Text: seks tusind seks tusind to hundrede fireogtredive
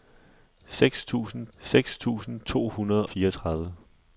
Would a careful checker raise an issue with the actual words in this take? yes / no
no